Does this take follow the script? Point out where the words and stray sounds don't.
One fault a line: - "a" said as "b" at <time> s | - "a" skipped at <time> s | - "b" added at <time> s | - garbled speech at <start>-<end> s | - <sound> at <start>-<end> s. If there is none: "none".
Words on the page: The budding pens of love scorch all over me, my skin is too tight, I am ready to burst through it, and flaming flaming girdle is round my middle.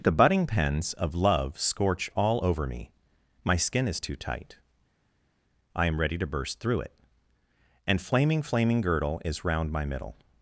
none